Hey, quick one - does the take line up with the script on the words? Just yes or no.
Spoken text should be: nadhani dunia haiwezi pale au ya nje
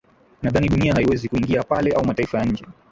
no